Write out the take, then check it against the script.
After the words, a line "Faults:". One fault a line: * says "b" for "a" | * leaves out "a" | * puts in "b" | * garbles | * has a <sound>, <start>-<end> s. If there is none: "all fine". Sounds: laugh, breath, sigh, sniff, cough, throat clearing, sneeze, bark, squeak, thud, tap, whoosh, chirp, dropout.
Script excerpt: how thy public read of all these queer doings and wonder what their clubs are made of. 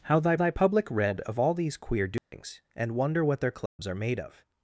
how thy thy public read of all these queer doings and wonder what their clubs are made of.
Faults:
* puts in "thy"
* has a dropout, 2.2-2.3 s
* has a dropout, 3.7-3.8 s